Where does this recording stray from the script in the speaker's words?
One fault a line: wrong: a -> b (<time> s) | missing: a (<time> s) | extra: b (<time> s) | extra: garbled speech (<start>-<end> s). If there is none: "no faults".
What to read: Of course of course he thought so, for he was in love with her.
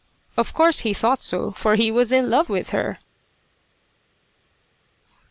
missing: of course (0.8 s)